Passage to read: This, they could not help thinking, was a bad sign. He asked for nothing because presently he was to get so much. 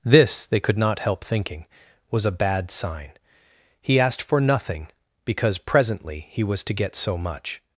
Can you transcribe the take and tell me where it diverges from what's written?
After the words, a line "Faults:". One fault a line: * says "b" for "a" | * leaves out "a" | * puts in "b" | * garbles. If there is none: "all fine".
This, they could not help thinking, was a bad sign. He asked for nothing because presently he was to get so much.
Faults:
all fine